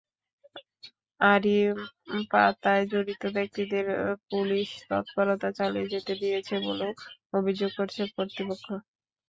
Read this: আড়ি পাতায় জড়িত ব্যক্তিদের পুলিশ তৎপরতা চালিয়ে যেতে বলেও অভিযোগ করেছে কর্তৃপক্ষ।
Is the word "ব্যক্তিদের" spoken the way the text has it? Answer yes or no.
yes